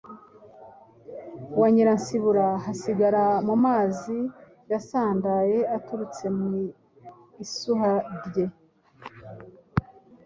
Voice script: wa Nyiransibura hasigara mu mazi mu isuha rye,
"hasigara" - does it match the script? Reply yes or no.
yes